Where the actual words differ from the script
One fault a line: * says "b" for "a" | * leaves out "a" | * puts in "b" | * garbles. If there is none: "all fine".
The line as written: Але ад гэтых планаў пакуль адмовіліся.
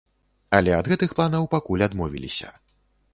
all fine